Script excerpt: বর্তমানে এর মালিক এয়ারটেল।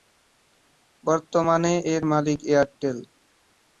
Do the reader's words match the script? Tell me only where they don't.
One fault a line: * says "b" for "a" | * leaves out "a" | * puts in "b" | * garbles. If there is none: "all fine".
all fine